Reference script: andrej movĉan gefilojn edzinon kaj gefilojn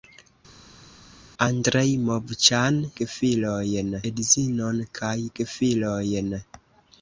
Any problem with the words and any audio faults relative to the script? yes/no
no